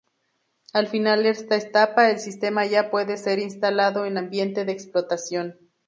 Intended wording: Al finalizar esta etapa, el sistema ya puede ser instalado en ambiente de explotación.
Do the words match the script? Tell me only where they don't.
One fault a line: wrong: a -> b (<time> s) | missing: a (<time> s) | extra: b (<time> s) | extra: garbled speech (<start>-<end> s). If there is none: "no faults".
no faults